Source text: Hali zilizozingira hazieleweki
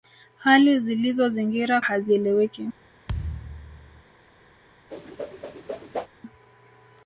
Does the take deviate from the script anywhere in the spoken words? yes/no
no